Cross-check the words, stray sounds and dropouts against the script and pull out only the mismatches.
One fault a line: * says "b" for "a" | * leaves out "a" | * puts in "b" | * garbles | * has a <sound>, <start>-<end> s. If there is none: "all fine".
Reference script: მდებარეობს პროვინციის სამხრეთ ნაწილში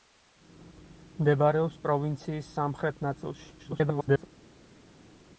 * garbles